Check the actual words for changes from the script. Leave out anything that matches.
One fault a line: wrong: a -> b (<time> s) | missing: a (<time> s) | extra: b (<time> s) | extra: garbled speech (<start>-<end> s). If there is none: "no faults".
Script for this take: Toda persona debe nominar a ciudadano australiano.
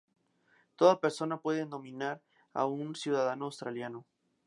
wrong: debe -> puede (1.4 s)
extra: un (2.7 s)